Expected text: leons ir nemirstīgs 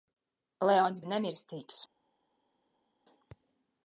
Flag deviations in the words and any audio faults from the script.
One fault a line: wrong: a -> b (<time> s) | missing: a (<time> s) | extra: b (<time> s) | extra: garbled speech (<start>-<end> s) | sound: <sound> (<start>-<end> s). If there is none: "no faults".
no faults